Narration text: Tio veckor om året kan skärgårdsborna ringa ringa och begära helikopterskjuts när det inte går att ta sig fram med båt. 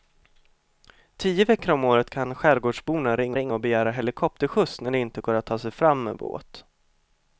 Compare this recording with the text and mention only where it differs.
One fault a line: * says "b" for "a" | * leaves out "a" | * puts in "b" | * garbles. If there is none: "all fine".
all fine